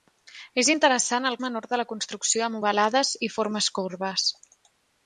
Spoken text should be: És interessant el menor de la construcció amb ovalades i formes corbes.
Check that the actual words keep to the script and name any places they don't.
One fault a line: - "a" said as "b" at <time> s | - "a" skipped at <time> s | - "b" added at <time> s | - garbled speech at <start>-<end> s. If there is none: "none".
none